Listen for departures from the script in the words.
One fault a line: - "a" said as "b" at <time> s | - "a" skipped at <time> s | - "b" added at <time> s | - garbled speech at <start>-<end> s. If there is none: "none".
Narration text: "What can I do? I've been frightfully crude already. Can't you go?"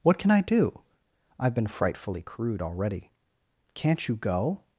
none